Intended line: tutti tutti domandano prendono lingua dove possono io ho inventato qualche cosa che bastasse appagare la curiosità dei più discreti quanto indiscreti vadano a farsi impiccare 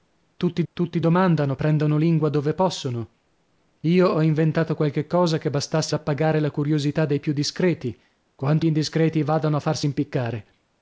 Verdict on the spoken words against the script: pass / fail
pass